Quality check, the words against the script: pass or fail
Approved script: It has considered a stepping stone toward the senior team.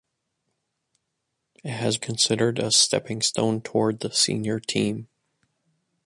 pass